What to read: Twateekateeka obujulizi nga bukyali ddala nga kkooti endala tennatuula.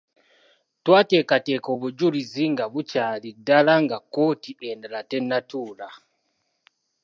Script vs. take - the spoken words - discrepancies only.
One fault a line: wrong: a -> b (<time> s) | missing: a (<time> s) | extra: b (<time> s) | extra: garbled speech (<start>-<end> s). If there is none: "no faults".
no faults